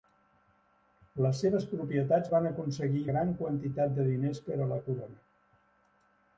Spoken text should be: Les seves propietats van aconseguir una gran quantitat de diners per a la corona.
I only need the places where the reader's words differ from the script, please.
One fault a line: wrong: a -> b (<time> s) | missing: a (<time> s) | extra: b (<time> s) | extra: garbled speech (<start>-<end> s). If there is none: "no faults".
missing: una (3.0 s)